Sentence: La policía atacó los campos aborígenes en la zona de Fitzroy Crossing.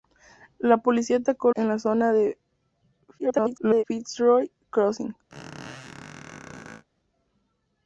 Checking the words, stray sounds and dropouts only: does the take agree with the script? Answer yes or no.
no